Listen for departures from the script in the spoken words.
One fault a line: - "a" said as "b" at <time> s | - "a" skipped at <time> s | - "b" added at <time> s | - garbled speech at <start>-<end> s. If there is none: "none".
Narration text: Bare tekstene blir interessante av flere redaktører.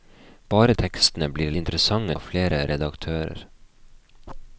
none